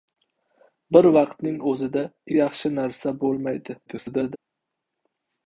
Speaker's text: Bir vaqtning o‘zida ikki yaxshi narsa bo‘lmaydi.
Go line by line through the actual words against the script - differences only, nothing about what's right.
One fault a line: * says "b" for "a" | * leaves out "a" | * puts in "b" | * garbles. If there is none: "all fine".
* leaves out "ikki"
* garbles